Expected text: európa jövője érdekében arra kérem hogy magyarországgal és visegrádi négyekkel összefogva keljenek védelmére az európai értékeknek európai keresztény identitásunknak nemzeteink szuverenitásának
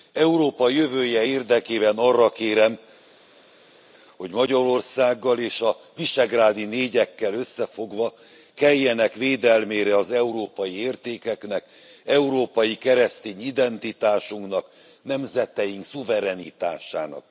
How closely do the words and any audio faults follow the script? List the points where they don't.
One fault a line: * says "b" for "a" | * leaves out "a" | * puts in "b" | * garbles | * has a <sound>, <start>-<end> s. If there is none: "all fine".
* puts in "a"